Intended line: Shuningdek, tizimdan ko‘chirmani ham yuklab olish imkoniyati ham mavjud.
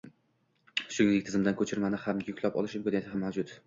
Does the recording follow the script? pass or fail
pass